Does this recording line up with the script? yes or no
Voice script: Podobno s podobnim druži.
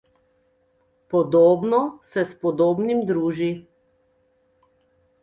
no